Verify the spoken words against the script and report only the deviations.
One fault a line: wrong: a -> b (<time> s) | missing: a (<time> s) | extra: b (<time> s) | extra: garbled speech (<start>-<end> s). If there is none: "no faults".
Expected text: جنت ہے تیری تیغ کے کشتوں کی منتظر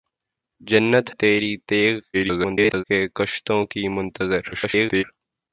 missing: ہے (1.1 s)
extra: garbled speech (2.1-2.8 s)
extra: garbled speech (4.5-5.0 s)